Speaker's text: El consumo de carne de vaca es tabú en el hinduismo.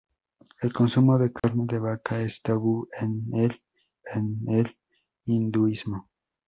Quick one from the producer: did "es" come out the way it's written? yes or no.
yes